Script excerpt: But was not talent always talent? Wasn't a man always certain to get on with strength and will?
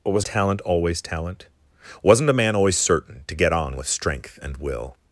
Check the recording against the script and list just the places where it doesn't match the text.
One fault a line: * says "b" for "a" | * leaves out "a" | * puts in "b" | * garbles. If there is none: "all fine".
* leaves out "not"